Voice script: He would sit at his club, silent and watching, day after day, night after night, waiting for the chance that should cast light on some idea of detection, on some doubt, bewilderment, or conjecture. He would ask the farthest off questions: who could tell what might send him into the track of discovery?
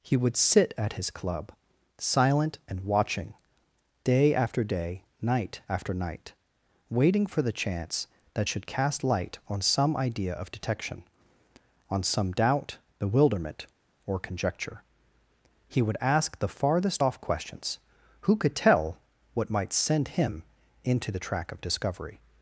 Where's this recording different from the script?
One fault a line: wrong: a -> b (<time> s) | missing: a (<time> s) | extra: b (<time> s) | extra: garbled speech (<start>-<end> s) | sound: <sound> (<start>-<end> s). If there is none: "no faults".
no faults